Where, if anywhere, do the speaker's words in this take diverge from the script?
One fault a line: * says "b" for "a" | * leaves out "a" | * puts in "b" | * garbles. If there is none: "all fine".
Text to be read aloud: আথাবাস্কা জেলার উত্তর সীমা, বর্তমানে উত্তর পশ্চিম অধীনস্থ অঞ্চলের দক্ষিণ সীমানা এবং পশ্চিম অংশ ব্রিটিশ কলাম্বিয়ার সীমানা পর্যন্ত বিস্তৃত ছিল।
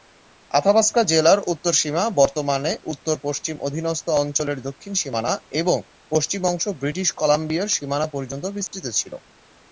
all fine